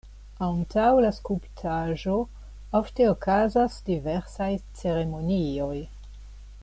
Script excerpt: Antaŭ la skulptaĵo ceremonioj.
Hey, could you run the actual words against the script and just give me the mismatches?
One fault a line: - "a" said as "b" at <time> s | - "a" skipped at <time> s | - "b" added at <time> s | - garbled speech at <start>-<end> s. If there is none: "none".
- "ofte okazas diversaj" added at 2.8 s